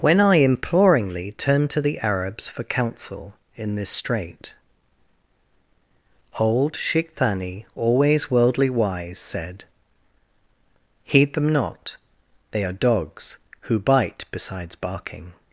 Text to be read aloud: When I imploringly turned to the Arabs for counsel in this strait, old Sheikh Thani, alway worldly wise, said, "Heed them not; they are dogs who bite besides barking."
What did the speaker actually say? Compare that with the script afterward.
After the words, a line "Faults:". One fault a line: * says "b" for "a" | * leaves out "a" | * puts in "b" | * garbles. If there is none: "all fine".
When I imploringly turned to the Arabs for counsel in this strait, old Sheikh Thani, always worldly wise, said, "Heed them not; they are dogs who bite besides barking."
Faults:
* says "always" for "alway"